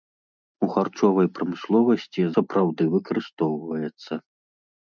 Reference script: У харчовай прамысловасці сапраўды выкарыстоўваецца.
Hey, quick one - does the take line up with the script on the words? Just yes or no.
yes